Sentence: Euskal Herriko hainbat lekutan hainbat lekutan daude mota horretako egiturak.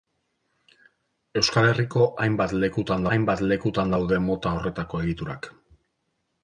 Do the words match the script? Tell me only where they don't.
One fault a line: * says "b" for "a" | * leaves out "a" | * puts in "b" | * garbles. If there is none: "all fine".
all fine